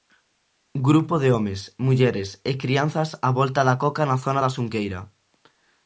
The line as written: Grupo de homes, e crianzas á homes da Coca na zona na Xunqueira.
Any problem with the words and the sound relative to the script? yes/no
yes